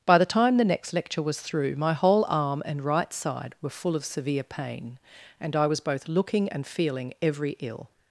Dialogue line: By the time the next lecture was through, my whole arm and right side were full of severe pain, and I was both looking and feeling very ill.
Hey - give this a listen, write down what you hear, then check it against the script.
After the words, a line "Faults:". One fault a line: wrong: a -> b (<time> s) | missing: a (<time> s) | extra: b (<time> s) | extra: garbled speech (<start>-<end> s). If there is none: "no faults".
By the time the next lecture was through, my whole arm and right side were full of severe pain, and I was both looking and feeling every ill.
Faults:
wrong: very -> every (7.2 s)